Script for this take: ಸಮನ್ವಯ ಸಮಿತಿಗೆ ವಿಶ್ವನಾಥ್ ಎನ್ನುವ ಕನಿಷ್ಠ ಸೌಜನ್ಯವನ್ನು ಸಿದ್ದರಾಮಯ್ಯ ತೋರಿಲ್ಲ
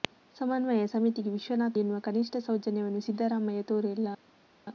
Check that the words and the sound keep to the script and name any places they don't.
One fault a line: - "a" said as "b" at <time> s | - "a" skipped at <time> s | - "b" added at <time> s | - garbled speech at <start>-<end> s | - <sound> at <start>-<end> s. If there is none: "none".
none